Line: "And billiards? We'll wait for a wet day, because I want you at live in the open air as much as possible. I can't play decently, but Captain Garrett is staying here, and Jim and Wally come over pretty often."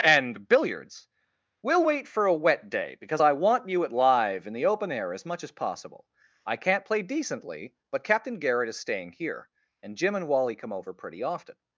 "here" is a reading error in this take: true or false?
false